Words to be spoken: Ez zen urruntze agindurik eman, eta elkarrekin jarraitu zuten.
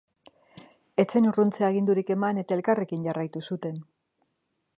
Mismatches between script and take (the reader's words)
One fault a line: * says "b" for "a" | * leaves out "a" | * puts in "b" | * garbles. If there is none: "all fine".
all fine